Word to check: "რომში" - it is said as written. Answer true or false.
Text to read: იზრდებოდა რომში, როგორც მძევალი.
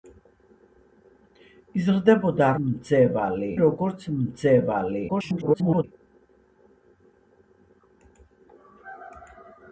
false